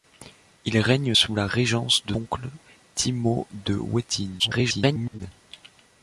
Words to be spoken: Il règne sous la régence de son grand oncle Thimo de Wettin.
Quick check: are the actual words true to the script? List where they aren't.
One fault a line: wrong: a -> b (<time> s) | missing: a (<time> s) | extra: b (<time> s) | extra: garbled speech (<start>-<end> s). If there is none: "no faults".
missing: son grand (2.1 s)
extra: garbled speech (4.4-5.2 s)